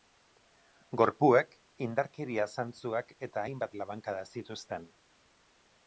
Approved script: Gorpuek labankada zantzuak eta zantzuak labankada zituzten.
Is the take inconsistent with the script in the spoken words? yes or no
yes